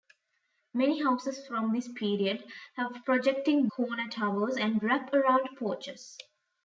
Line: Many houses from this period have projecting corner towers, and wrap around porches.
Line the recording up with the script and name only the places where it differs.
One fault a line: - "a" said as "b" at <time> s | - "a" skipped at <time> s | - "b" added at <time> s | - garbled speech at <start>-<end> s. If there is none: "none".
none